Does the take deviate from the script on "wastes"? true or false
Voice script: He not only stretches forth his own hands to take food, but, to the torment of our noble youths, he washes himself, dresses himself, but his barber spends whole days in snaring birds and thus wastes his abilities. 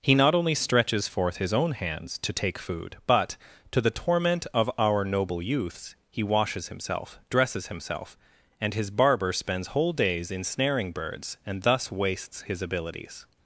false